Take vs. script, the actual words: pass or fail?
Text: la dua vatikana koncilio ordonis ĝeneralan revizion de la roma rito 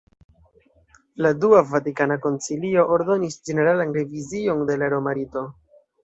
pass